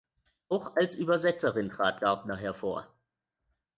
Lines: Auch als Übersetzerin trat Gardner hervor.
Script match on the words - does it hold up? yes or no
yes